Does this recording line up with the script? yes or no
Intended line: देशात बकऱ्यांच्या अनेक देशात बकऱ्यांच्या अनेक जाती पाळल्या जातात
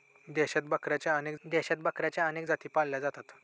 yes